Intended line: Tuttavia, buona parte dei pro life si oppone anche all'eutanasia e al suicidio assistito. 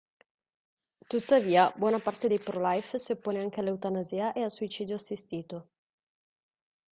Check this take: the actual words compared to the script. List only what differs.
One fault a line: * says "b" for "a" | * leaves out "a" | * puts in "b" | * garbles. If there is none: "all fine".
all fine